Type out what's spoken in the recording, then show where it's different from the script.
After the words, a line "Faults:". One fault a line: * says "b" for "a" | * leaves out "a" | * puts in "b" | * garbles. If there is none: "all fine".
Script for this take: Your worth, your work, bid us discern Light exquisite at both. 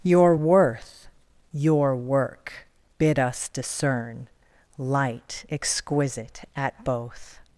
Your worth, your work, bid us discern Light exquisite at both.
Faults:
all fine